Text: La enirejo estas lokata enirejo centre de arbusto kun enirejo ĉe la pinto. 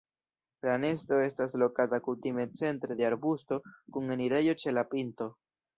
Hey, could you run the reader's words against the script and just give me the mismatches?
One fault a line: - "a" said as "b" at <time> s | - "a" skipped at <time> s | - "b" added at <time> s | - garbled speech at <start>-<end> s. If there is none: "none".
- "enirejo" said as "nesto" at 0.8 s
- "enirejo" said as "kutime" at 2.1 s